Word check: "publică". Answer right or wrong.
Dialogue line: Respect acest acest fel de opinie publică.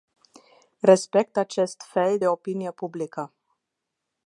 right